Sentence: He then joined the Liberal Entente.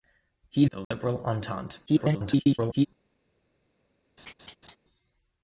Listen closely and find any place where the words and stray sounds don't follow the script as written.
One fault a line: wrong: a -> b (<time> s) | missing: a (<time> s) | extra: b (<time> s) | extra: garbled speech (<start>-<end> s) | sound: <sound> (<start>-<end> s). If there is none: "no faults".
missing: then joined (0.7 s)
sound: dropout (0.8-0.9 s)
extra: garbled speech (1.9-2.9 s)
sound: laugh (4.2-4.8 s)